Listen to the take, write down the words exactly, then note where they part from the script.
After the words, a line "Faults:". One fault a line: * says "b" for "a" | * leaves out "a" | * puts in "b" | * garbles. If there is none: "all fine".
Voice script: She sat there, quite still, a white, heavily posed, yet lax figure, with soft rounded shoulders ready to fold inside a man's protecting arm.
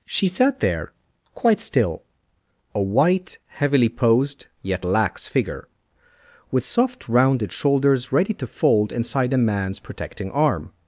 She sat there, quite still, a white, heavily posed, yet lax figure, with soft rounded shoulders ready to fold inside a man's protecting arm.
Faults:
all fine